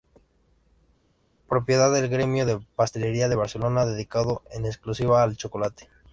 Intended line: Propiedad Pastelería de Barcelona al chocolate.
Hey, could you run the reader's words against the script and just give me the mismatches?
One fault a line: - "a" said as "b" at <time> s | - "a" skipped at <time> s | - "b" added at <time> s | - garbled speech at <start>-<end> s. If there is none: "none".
- "del Gremio de" added at 1.9 s
- "dedicado en exclusiva" added at 3.8 s